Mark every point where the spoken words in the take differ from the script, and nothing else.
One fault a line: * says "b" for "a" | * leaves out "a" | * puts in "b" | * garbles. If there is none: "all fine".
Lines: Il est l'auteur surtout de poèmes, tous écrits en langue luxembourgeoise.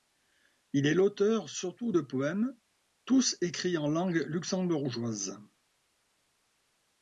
all fine